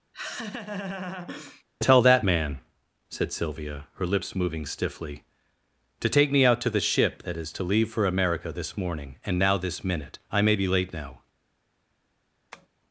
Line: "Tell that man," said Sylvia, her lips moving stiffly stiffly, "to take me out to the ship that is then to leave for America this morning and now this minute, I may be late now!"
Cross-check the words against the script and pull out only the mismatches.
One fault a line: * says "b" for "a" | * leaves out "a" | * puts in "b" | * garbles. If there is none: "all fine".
* leaves out "stiffly"
* leaves out "then"